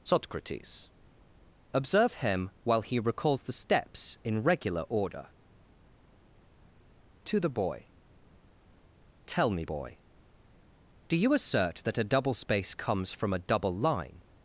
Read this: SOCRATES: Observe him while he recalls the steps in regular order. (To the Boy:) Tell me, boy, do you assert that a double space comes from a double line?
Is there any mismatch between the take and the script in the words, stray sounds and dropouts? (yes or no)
no